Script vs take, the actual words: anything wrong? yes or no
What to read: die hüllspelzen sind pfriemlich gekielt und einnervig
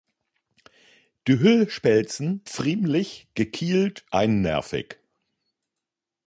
yes